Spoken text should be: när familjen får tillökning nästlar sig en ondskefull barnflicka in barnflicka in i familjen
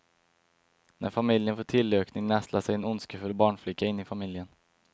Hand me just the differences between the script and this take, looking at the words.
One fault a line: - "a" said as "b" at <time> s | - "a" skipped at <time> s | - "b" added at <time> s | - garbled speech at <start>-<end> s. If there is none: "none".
- "barnflicka in" skipped at 4.0 s